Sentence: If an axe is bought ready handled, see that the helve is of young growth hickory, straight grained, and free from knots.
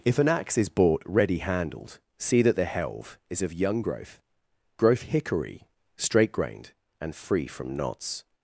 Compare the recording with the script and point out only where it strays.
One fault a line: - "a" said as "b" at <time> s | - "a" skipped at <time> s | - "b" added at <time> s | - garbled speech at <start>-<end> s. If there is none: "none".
- "growth" added at 4.8 s